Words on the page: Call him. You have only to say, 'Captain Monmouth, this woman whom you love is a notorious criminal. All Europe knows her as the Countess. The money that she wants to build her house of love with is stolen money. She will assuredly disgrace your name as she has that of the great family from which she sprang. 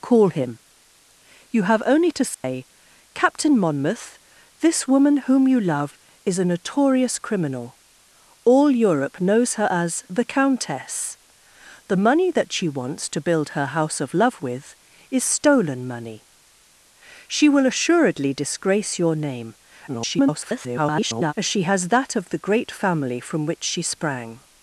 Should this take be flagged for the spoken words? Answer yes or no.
yes